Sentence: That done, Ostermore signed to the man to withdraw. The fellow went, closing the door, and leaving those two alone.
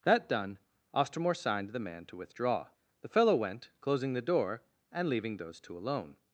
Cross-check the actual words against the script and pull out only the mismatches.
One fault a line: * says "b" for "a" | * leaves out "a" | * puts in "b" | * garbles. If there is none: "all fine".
* leaves out "to"